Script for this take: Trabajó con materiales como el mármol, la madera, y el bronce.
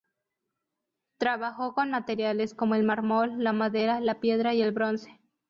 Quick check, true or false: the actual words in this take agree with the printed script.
false